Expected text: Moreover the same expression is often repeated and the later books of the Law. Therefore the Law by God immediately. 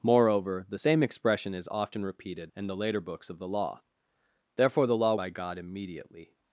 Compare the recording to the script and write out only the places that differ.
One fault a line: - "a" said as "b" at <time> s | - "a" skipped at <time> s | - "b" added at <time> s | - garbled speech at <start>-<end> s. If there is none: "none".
none